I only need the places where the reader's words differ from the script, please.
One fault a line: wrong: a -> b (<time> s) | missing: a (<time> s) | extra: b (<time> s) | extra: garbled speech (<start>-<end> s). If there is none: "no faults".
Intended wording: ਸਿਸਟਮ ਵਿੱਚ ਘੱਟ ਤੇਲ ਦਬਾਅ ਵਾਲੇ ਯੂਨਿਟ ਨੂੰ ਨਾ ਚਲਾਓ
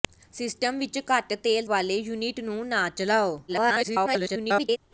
missing: ਦਬਾਅ (1.7 s)
extra: garbled speech (3.5-4.8 s)